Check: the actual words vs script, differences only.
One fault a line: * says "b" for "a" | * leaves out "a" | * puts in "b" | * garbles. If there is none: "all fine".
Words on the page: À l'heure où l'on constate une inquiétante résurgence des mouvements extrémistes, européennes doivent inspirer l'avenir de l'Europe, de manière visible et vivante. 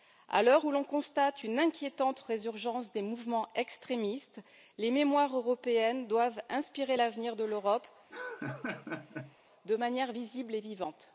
* puts in "les mémoires"